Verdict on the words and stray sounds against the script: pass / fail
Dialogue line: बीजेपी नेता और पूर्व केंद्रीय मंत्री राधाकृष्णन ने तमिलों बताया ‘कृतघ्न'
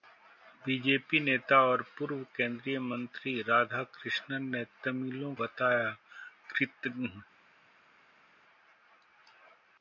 pass